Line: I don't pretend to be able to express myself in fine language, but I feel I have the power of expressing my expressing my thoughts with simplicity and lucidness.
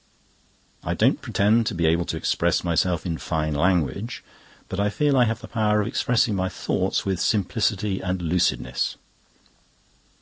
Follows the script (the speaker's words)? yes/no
no